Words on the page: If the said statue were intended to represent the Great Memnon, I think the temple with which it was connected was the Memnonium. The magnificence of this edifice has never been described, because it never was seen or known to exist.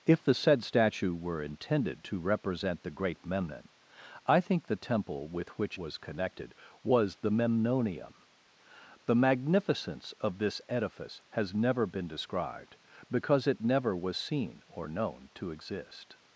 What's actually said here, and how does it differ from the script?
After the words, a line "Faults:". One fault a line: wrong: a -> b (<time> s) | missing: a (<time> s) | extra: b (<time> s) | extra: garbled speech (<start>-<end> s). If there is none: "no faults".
If the said statue were intended to represent the Great Memnon, I think the temple with which was connected was the Memnonium. The magnificence of this edifice has never been described, because it never was seen or known to exist.
Faults:
missing: it (5.8 s)